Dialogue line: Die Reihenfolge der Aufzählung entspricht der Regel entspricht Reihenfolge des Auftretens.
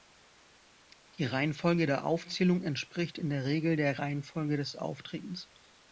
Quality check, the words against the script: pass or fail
fail